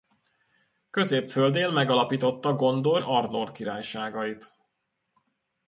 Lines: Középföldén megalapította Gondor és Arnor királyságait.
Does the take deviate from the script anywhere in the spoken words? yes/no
yes